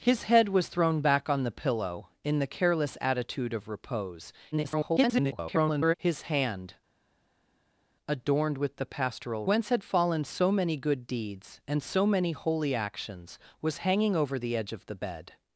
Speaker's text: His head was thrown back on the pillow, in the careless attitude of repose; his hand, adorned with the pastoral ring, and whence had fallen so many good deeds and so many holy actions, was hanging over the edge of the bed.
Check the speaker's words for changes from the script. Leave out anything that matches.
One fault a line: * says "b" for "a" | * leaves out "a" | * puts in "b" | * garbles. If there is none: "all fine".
* garbles
* leaves out "ring and"